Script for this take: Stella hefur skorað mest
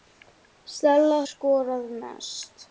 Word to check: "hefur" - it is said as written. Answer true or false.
false